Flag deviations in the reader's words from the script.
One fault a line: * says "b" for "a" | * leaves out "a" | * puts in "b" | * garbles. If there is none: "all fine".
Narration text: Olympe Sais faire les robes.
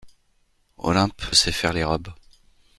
all fine